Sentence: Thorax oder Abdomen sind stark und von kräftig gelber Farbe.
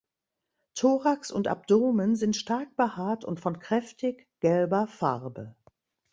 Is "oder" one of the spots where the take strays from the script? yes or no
yes